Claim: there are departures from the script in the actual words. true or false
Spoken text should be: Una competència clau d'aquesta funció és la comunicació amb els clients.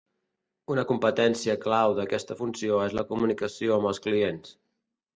false